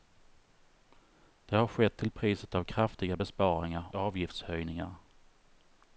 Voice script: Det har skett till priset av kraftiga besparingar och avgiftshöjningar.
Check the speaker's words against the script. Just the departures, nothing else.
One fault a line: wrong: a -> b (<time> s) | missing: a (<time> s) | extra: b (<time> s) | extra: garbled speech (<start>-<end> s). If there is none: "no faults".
missing: och (3.9 s)